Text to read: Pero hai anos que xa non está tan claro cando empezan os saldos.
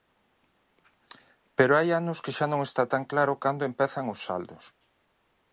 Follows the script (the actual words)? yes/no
yes